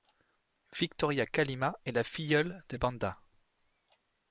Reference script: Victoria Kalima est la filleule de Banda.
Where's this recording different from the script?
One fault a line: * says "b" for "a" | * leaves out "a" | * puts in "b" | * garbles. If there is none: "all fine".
all fine